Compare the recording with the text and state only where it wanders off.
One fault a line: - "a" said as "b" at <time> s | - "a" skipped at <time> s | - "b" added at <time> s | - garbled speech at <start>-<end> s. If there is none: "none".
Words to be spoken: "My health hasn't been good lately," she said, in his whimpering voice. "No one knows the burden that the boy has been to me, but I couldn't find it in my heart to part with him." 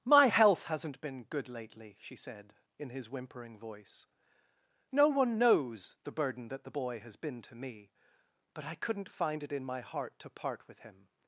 none